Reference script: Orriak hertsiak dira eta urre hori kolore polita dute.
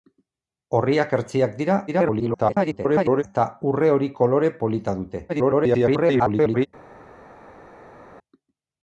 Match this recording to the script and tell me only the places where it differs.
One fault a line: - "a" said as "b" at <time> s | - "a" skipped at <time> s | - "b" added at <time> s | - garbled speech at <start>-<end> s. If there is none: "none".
- garbled speech at 1.9-3.2 s
- garbled speech at 5.3-6.7 s